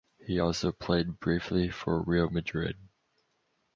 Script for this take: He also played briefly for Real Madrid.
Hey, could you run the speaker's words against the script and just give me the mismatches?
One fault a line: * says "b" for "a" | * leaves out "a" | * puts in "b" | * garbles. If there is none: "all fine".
all fine